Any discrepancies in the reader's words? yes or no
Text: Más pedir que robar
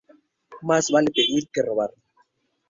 yes